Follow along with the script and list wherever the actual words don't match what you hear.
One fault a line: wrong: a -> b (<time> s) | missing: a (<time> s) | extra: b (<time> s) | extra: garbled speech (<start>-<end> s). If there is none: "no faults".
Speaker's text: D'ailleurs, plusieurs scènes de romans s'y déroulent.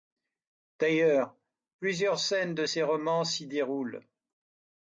extra: ses (2.6 s)